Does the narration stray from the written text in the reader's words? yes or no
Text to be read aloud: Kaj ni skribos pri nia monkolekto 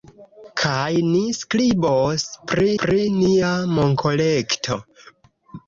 yes